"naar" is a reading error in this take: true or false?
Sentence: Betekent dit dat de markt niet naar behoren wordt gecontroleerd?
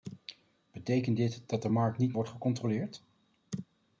true